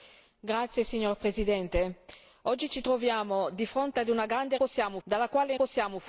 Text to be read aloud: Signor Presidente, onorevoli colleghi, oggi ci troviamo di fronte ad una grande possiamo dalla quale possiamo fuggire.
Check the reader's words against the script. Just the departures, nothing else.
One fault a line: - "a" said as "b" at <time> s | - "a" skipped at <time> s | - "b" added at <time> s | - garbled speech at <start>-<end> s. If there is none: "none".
none